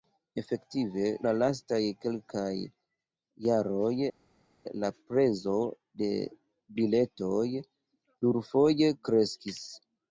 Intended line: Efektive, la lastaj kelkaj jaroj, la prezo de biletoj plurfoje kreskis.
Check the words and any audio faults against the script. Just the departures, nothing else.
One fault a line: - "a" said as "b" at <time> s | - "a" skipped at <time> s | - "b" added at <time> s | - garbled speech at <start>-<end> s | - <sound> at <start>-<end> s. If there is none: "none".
none